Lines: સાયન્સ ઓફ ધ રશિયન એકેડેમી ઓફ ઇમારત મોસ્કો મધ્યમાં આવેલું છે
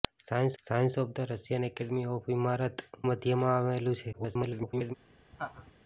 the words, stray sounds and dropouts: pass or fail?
fail